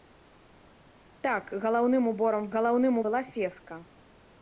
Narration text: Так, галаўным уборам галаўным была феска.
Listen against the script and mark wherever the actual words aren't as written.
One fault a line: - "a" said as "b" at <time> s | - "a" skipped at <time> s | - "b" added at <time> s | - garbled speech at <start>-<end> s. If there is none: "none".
none